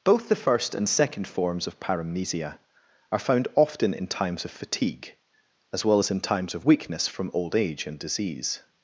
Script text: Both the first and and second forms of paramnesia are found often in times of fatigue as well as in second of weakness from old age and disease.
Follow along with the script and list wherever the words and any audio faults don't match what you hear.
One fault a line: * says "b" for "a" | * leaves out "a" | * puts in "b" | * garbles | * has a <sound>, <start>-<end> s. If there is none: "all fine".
* leaves out "and"
* says "times" for "second"